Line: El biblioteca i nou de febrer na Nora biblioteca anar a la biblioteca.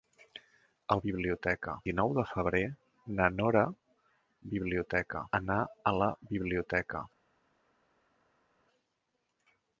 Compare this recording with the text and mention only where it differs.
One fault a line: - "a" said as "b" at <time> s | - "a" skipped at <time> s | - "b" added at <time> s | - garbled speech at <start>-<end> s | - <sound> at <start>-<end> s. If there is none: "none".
none